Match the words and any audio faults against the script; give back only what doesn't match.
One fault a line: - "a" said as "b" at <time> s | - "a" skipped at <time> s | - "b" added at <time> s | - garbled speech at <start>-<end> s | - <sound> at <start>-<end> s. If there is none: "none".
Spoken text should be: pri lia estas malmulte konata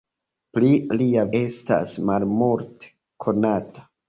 none